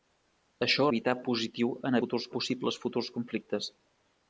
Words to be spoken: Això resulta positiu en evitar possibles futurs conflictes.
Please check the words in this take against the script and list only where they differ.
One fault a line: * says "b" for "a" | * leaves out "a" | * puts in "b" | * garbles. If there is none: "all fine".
* says "evitar" for "resulta"
* says "futurs" for "evitar"